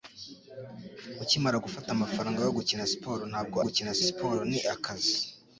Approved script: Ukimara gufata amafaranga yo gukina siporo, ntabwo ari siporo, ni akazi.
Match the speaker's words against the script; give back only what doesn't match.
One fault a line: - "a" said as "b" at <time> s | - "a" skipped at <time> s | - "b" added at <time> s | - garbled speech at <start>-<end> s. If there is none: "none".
- "ari" said as "gukina" at 3.6 s